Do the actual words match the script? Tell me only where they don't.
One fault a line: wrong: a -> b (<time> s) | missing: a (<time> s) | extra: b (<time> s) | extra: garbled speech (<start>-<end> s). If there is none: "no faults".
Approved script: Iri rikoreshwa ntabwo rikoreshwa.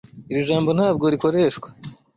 wrong: rikoreshwa -> jambo (0.5 s)